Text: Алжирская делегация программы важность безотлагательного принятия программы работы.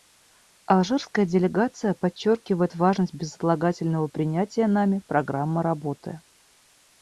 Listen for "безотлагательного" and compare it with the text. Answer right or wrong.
right